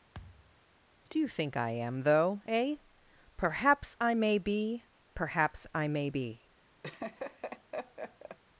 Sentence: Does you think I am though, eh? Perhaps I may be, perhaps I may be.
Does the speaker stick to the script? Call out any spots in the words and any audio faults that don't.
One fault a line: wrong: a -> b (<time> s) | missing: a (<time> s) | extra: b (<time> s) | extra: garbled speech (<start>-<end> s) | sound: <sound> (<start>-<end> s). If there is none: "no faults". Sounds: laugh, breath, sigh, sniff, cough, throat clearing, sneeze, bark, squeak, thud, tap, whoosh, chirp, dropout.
sound: thud (0.1-0.6 s)
wrong: Does -> Do (1.1 s)
sound: laugh (6.8-8.4 s)